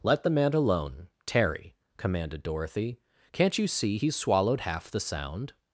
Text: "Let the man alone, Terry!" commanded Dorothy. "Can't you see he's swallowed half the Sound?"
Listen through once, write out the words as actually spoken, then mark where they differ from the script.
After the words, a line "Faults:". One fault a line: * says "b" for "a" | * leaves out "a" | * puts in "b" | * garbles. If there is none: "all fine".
"Let the man alone, Terry!" commanded Dorothy. "Can't you see he's swallowed half the Sound?"
Faults:
all fine